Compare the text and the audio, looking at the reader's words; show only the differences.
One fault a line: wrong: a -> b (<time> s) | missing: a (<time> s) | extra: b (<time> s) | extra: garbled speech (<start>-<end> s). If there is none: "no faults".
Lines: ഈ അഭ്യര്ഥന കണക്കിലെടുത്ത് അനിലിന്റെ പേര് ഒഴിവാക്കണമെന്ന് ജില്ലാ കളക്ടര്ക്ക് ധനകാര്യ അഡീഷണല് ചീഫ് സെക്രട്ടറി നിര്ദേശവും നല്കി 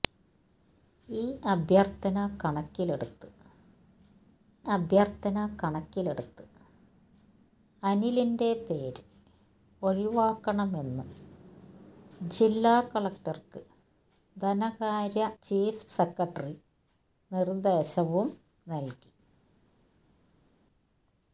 extra: അഭ്യര്ഥന കണക്കിലെടുത്ത് (4.7 s)
missing: അഡീഷണല് (15.3 s)